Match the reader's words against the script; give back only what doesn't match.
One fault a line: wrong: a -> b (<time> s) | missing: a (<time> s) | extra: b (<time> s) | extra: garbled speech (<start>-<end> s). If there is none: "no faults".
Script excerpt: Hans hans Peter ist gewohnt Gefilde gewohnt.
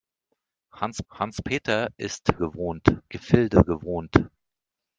no faults